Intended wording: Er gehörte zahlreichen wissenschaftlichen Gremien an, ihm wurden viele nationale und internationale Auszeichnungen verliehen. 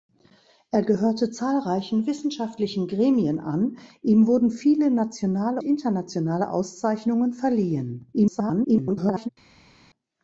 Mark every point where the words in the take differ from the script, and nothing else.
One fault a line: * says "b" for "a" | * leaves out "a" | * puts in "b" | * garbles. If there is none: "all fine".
* leaves out "und"
* garbles